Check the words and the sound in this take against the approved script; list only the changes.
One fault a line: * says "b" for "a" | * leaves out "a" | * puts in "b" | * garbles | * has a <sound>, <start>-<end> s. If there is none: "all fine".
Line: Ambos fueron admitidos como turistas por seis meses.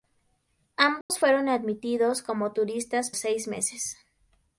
* has a dropout, 1.0-1.1 s
* leaves out "por"